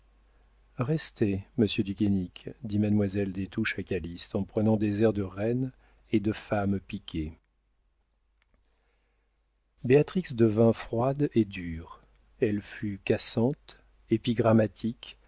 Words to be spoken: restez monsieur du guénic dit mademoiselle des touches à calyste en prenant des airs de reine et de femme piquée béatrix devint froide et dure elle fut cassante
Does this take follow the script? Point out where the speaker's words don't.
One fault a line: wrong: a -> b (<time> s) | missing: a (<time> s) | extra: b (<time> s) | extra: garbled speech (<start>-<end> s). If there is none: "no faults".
no faults